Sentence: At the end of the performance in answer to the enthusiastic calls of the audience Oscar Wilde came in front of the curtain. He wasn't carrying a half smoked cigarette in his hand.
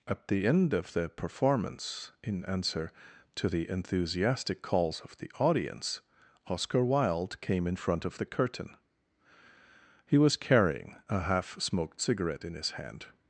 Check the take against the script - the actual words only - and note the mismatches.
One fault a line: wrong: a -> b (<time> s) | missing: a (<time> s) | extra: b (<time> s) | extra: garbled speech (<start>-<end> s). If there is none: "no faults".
wrong: wasn't -> was (10.2 s)